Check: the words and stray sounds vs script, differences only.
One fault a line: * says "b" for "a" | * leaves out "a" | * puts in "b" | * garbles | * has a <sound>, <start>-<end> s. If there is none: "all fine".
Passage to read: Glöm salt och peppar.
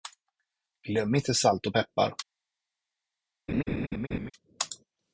* puts in "inte"
* has a laugh, 3.5-4.3 s